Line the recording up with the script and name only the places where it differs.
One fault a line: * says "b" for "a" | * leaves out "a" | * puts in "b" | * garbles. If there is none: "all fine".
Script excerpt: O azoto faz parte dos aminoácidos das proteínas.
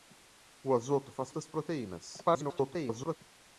* leaves out "parte dos aminoácidos"
* garbles